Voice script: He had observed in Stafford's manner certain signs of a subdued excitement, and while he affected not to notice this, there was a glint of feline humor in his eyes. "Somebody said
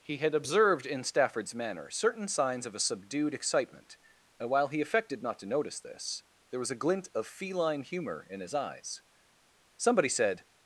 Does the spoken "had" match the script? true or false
true